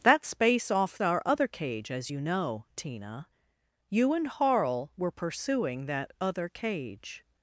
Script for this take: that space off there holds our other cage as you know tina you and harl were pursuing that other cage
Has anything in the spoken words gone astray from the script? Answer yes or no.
yes